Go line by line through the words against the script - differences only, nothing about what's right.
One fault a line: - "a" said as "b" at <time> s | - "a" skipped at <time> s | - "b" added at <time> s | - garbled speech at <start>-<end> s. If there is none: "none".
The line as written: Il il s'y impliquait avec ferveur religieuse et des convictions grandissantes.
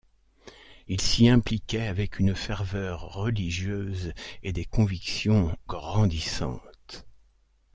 - "il" skipped at 1.0 s
- "une" added at 2.2 s